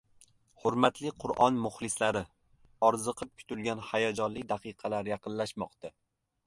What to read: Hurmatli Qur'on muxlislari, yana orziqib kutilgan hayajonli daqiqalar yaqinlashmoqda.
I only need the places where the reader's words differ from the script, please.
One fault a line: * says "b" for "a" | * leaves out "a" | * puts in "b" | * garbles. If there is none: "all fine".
* leaves out "yana"